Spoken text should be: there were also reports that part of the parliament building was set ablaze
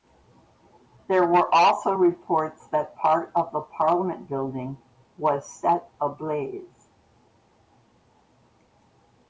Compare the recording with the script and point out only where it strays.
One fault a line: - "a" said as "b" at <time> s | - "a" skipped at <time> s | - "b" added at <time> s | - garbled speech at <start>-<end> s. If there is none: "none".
none